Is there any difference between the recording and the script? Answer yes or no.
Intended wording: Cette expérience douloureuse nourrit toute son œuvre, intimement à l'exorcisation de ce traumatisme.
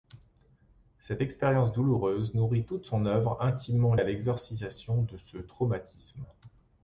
no